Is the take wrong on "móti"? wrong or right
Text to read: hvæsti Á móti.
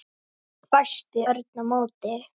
right